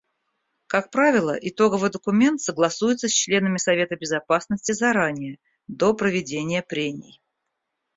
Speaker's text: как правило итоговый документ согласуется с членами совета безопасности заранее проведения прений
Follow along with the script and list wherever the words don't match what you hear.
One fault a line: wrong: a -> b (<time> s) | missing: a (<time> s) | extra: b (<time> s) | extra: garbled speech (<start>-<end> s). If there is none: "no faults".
extra: до (5.7 s)